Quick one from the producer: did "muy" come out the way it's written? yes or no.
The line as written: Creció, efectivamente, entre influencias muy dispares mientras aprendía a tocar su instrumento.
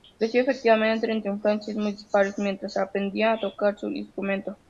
yes